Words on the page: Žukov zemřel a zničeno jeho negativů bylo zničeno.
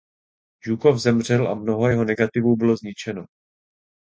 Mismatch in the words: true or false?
true